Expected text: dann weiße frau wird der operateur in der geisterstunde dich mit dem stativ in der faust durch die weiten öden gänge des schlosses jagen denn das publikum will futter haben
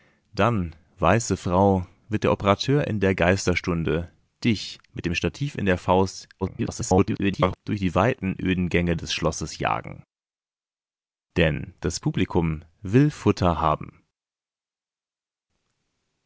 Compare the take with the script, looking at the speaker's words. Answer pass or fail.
fail